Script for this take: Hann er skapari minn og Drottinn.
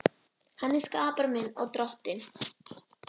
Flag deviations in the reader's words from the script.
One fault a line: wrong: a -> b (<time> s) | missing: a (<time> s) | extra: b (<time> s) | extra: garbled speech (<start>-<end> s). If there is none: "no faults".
no faults